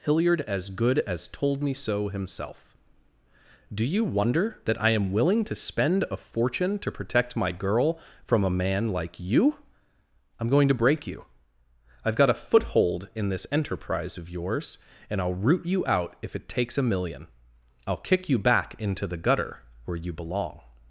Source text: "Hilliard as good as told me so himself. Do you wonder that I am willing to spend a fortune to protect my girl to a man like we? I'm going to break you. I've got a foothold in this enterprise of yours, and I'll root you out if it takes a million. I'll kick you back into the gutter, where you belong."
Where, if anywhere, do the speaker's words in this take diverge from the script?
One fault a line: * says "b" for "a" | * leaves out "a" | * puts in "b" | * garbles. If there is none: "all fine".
* says "from" for "to"
* says "you" for "we"